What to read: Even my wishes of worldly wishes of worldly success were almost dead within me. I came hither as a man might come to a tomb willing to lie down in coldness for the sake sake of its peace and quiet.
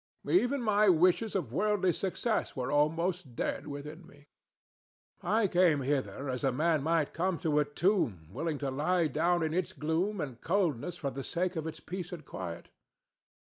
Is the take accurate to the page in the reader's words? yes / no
no